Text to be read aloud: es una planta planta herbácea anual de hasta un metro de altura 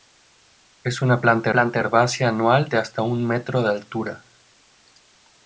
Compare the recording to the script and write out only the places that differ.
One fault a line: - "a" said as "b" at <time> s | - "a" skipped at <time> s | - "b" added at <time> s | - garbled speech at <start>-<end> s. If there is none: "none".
none